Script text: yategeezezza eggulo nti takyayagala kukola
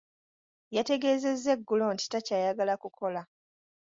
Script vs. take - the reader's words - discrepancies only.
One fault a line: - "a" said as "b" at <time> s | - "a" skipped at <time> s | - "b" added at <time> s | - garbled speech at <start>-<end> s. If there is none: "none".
none